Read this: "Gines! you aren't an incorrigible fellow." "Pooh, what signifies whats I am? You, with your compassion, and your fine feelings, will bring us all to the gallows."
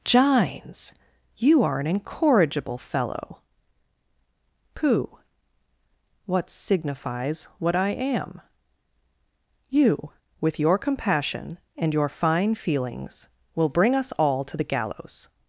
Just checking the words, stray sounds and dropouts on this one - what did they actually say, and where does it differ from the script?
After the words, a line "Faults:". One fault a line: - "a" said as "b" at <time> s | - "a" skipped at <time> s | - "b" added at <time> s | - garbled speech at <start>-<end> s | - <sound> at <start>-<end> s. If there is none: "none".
"Gines! you are an incorrigible fellow." "Pooh, what signifies what I am? You, with your compassion, and your fine feelings, will bring us all to the gallows."
Faults:
- "aren't" said as "are" at 1.6 s
- "whats" said as "what" at 7.6 s